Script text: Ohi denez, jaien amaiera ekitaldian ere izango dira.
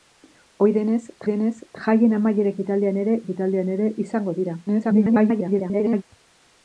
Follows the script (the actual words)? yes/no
no